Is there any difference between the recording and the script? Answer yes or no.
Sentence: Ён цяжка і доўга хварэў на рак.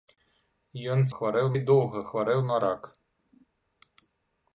yes